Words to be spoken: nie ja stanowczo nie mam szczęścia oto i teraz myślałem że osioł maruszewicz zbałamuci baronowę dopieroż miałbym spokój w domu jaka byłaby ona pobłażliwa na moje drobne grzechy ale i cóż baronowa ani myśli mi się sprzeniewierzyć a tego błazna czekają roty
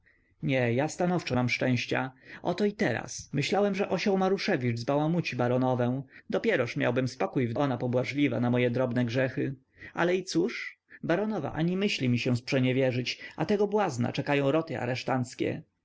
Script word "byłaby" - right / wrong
wrong